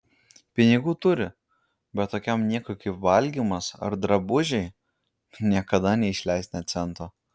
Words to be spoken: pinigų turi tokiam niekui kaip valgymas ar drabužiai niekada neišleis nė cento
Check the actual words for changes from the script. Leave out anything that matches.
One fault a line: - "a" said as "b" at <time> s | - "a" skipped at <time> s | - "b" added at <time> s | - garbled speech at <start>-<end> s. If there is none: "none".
- "bet" added at 2.0 s